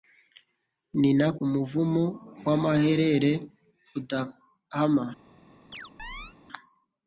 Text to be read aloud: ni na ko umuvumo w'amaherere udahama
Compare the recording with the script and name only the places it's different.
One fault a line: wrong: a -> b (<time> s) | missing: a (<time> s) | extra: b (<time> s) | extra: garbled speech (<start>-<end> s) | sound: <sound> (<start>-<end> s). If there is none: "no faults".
missing: ko (1.3 s)
sound: chirp (5.7-6.4 s)